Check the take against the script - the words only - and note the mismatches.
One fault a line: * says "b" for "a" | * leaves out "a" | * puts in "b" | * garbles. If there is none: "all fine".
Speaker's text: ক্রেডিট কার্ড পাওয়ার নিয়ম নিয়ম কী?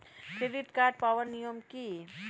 * leaves out "নিয়ম"